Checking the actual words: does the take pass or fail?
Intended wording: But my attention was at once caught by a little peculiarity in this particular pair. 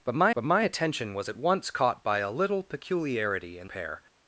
fail